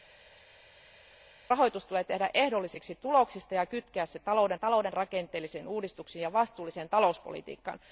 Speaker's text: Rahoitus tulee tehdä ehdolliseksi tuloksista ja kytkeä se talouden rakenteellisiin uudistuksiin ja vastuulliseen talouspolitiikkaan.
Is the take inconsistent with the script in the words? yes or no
yes